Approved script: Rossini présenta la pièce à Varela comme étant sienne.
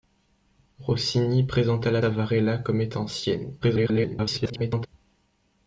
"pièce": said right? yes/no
no